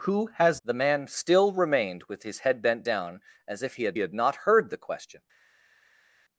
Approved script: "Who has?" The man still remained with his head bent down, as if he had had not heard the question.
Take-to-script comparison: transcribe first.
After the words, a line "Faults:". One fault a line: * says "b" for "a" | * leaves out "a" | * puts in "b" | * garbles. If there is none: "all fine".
"Who has?" The man still remained with his head bent down, as if he had had not heard the question.
Faults:
all fine